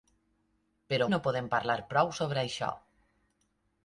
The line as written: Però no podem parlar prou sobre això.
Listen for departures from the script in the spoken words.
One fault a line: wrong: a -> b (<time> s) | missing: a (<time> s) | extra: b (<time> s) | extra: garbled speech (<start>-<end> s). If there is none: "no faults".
no faults